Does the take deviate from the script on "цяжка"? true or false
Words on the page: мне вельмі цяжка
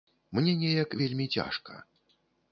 false